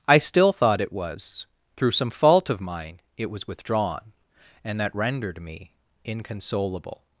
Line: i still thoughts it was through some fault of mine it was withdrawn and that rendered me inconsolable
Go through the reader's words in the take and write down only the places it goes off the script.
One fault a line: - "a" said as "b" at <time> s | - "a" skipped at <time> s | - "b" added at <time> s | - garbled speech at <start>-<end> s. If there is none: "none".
- "thoughts" said as "thought" at 0.5 s